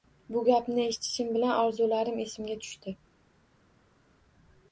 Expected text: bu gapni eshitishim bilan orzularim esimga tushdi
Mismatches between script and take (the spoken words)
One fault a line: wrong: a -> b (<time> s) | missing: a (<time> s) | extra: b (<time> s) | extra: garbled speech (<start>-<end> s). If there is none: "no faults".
no faults